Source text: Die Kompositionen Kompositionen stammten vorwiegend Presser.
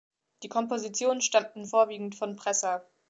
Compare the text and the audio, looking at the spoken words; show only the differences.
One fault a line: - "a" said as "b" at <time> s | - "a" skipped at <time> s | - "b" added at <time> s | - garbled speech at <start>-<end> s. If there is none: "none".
- "Kompositionen" skipped at 1.2 s
- "von" added at 2.2 s